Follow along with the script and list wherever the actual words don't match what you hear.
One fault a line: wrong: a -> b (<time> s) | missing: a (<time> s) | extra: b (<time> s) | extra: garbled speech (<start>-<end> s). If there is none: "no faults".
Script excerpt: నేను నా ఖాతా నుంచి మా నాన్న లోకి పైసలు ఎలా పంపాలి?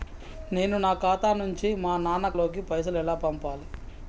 no faults